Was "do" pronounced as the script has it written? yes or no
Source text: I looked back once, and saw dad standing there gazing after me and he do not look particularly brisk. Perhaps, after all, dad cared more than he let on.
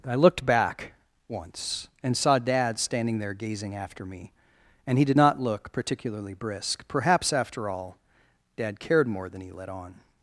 no